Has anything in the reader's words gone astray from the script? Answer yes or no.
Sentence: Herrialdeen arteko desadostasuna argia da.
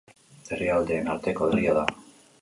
yes